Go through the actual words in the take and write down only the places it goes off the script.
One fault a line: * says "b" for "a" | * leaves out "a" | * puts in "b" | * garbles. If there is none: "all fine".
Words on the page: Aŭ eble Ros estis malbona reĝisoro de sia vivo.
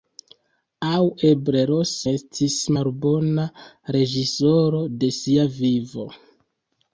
all fine